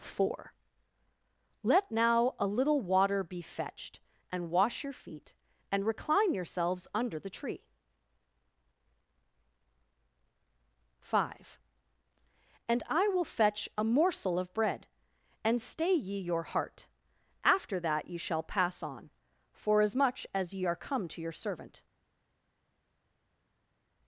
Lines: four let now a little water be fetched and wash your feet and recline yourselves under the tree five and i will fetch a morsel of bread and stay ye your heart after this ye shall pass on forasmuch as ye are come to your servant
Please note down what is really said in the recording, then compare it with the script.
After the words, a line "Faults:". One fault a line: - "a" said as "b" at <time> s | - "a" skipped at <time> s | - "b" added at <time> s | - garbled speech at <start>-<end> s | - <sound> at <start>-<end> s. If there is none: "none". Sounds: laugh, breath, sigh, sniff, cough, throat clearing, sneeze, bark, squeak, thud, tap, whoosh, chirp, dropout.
four let now a little water be fetched and wash your feet and recline yourselves under the tree five and i will fetch a morsel of bread and stay ye your heart after that ye shall pass on forasmuch as ye are come to your servant
Faults:
- "this" said as "that" at 17.8 s